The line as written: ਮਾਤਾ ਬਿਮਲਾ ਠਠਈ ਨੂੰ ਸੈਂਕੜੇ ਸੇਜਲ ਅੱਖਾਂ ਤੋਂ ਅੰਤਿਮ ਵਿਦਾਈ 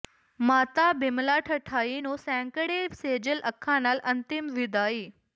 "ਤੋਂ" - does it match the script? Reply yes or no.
no